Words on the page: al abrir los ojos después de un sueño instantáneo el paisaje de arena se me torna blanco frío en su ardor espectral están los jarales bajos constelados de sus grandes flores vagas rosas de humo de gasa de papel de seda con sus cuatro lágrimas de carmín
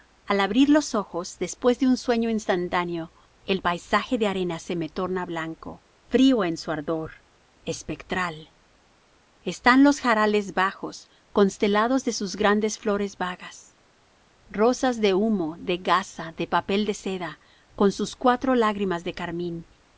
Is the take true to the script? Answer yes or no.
yes